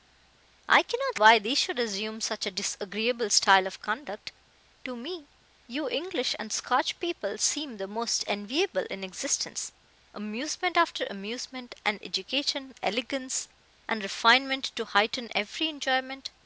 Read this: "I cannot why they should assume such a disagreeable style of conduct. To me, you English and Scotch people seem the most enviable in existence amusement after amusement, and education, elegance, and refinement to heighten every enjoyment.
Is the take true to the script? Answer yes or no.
yes